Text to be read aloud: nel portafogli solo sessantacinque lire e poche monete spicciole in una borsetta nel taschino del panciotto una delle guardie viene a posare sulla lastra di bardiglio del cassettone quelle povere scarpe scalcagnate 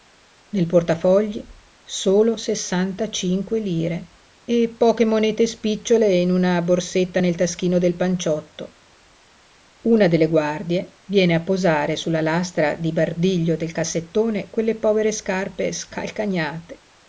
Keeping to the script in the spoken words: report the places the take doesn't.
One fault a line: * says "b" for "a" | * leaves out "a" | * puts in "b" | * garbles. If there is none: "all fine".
all fine